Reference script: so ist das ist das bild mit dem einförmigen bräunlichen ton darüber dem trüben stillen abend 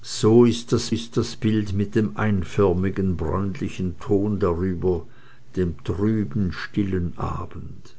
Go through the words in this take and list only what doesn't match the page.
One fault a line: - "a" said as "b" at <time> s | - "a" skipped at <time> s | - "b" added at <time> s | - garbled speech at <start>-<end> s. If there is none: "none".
none